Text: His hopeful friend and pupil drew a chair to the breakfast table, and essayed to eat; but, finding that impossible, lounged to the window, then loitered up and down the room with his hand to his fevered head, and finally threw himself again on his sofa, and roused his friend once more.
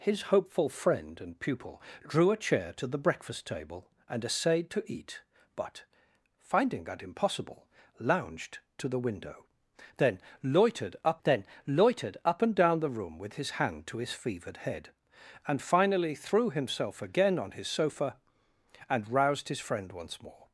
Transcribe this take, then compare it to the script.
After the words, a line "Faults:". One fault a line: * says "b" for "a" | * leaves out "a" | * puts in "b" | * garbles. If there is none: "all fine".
His hopeful friend and pupil drew a chair to the breakfast table, and essayed to eat; but, finding that impossible, lounged to the window, then loitered up then loitered up and down the room with his hand to his fevered head, and finally threw himself again on his sofa, and roused his friend once more.
Faults:
* puts in "then loitered up"